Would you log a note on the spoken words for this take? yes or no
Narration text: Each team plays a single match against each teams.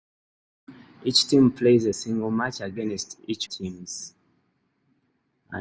no